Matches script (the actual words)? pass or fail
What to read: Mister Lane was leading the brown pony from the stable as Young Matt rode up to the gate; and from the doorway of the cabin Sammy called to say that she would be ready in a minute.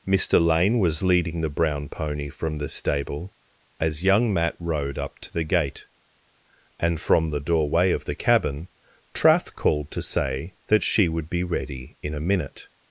fail